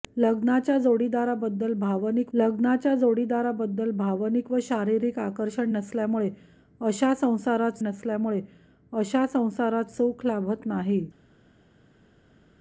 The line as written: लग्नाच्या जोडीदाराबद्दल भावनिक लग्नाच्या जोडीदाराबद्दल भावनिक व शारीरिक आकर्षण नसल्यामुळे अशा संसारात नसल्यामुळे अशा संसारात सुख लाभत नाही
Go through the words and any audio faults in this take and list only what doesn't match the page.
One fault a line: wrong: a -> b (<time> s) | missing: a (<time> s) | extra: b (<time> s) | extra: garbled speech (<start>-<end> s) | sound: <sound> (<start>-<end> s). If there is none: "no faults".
no faults